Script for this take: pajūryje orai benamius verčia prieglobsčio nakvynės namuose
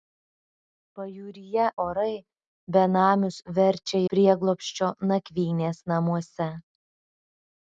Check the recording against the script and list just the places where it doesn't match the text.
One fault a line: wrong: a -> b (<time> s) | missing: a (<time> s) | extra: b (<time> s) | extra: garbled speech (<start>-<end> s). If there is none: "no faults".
no faults